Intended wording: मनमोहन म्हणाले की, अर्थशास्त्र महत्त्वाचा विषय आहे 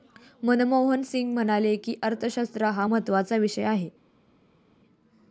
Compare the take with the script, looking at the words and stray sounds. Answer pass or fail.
fail